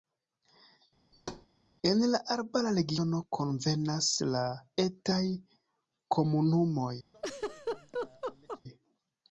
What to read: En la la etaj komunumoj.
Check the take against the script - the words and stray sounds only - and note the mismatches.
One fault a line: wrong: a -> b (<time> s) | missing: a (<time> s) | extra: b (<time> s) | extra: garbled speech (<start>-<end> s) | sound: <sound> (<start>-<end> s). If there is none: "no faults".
sound: thud (1.1-1.5 s)
extra: arbara regiono konvenas (2.4 s)
sound: laugh (7.1-8.6 s)